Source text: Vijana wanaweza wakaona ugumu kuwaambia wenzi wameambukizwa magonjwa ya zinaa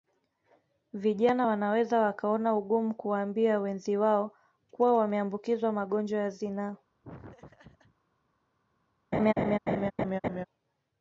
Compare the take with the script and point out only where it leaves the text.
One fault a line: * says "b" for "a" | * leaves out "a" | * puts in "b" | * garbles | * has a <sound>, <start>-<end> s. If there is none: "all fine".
* puts in "wao kuwa"
* has a laugh, 7.0-8.0 s
* has a laugh, 9.1-10.4 s